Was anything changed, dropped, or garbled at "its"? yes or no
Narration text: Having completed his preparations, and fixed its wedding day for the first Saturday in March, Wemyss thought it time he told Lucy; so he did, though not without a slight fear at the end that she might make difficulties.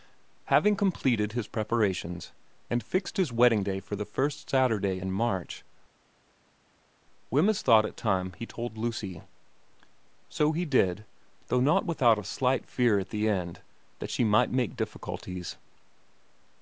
yes